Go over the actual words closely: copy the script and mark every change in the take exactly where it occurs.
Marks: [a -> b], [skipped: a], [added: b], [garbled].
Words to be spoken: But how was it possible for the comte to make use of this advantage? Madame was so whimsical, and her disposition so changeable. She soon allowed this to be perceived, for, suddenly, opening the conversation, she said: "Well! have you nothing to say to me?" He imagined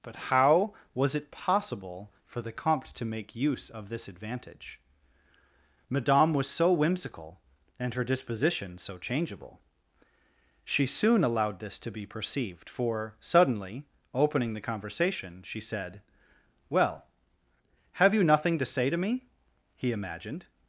But how was it possible for the comte to make use of this advantage? Madame was so whimsical, and her disposition so changeable. She soon allowed this to be perceived, for, suddenly, opening the conversation, she said: "Well! have you nothing to say to me?" He imagined